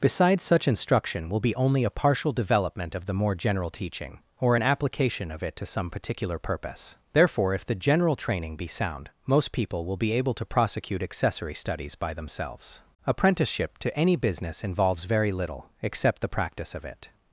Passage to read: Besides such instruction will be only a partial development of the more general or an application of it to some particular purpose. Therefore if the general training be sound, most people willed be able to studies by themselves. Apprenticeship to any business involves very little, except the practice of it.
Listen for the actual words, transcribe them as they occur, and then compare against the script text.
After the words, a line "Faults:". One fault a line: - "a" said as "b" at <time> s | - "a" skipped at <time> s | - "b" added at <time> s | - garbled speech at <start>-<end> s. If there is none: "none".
Besides such instruction will be only a partial development of the more general teaching, or an application of it to some particular purpose. Therefore if the general training be sound, most people will be able to prosecute accessory studies by themselves. Apprenticeship to any business involves very little, except the practice of it.
Faults:
- "teaching" added at 3.7 s
- "willed" said as "will" at 9.8 s
- "prosecute accessory" added at 10.4 s